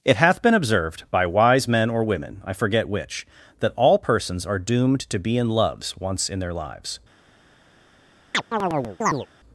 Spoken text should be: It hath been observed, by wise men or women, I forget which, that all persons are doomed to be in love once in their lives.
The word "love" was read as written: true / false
false